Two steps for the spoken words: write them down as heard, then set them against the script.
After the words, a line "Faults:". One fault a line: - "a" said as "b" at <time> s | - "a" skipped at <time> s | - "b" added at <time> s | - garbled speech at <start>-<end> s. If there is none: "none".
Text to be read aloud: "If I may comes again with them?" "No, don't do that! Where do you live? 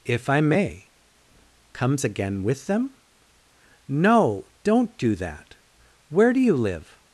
"If I may comes again with them?" "No, don't do that! Where do you live?
Faults:
none